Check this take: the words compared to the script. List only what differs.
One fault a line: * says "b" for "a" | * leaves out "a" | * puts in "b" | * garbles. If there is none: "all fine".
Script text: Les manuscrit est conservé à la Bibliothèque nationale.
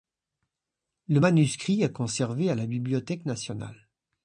* says "Le" for "Les"